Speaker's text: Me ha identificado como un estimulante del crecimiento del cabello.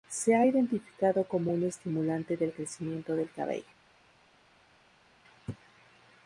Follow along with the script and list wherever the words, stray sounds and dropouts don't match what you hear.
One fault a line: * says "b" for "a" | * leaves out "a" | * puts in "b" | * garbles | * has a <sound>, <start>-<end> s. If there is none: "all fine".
* says "Se" for "Me"